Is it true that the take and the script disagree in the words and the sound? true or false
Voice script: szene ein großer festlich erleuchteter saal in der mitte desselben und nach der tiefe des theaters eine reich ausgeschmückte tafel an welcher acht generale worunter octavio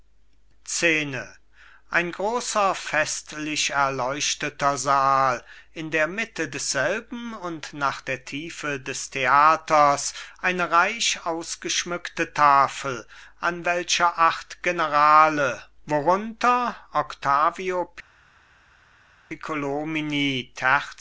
false